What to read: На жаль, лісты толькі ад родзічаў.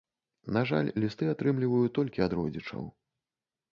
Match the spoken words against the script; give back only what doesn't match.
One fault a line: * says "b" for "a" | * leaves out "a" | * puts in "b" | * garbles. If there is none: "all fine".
* puts in "атрымліваю"